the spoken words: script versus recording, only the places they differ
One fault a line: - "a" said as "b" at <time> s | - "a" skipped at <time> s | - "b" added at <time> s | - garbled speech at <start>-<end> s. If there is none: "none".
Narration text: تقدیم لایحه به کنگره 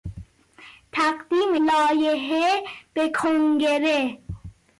none